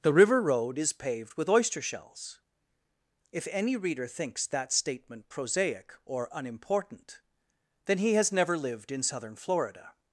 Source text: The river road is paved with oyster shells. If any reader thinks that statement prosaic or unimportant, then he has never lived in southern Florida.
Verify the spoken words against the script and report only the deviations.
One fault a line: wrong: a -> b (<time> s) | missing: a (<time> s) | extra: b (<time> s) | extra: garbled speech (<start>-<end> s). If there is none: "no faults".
no faults